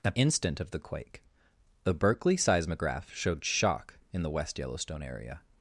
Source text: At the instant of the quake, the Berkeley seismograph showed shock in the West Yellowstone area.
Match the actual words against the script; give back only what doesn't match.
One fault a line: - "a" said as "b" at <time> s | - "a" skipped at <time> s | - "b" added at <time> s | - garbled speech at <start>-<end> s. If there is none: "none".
- "the" skipped at 0.2 s